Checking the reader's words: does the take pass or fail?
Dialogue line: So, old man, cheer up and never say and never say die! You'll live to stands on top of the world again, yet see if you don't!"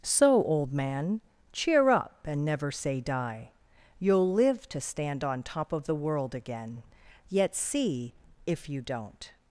fail